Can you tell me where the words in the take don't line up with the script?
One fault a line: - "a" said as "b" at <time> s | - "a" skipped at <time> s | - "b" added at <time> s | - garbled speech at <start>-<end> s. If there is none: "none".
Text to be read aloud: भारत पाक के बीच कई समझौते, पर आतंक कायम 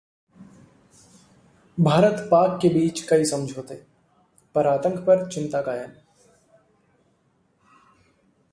- "पर चिंता" added at 5.0 s